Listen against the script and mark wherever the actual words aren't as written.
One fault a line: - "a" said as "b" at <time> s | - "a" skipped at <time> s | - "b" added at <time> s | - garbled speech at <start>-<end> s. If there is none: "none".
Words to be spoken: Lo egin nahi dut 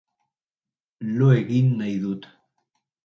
none